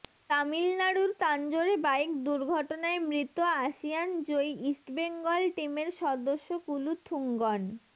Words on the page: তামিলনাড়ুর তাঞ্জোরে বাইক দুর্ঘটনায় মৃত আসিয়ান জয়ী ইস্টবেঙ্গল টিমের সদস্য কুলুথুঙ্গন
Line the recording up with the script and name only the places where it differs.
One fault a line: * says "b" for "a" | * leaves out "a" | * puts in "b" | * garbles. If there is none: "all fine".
all fine